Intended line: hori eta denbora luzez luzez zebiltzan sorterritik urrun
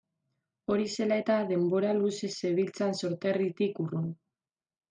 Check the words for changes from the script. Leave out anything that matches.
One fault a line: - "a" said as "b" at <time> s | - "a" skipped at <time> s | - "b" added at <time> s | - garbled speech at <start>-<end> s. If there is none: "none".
- "zela" added at 0.9 s
- "luzez" skipped at 2.3 s